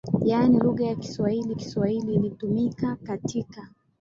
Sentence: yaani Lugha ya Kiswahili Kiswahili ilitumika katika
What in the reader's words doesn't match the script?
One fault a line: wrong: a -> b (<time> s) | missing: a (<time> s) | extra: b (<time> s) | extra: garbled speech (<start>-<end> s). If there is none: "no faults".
no faults